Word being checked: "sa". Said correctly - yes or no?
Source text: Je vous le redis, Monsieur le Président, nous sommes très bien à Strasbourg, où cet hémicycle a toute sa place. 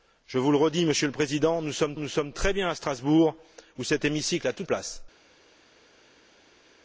no